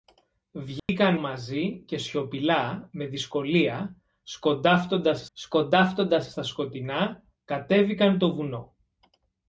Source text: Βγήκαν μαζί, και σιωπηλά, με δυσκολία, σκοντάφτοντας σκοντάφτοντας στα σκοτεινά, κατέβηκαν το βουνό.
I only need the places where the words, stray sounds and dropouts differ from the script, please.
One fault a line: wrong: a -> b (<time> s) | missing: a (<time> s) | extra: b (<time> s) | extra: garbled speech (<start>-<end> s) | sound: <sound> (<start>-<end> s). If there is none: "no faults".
sound: dropout (0.8-0.9 s)